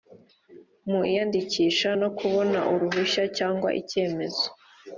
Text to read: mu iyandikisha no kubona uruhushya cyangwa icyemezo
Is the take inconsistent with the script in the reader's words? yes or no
no